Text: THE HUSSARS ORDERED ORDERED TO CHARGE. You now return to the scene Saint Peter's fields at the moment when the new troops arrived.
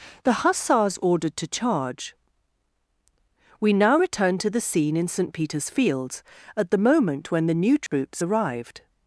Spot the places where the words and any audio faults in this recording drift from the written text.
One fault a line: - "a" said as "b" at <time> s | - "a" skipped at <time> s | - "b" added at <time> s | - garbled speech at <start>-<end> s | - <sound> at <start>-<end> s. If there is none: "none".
- "ORDERED" skipped at 1.4 s
- "You" said as "We" at 3.6 s
- "in" added at 5.0 s
- dropout at 7.9-7.9 s